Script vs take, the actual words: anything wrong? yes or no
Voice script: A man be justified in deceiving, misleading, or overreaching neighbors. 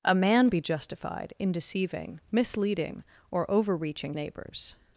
no